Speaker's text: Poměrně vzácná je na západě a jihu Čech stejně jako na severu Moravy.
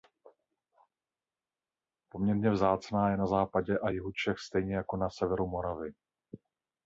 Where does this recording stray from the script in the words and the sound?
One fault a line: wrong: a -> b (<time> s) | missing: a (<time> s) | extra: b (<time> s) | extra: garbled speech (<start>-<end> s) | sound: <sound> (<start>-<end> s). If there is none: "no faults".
no faults